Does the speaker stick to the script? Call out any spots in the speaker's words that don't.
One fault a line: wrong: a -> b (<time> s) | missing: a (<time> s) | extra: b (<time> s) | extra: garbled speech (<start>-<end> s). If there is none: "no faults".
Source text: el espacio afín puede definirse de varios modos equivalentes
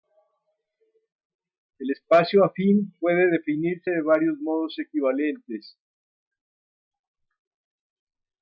no faults